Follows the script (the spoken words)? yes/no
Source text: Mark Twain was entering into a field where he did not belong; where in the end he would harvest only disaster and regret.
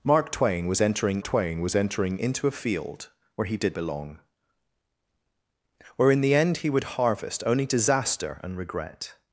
no